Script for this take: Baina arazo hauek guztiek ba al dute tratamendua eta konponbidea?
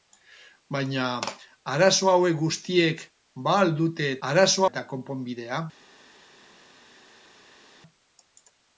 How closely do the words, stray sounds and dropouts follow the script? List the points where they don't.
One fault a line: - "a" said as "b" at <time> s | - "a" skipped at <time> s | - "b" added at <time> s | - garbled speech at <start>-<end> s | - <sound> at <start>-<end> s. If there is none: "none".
- "tratamendua" said as "arazo" at 4.3 s